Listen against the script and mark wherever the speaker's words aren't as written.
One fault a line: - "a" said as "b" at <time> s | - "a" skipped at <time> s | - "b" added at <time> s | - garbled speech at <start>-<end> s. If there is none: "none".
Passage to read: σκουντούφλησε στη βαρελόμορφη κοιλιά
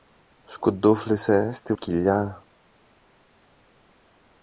- "βαρελόμορφη" skipped at 1.7 s